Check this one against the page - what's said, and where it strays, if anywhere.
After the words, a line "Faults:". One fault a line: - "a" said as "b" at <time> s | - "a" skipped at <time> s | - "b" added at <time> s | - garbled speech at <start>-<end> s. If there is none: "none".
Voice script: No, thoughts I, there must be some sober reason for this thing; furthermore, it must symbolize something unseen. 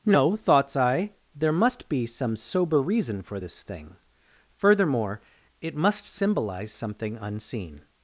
No, thoughts I, there must be some sober reason for this thing; furthermore, it must symbolize something unseen.
Faults:
none